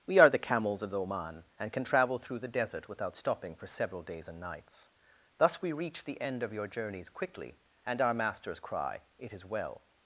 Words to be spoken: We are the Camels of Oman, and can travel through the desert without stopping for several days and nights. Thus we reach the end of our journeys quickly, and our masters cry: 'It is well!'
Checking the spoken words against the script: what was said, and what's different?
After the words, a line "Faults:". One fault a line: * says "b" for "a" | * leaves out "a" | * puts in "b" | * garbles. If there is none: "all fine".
We are the Camels of Oman, and can travel through the desert without stopping for several days and nights. Thus we reach the end of your journeys quickly, and our masters cry: 'It is well!'
Faults:
* says "your" for "our"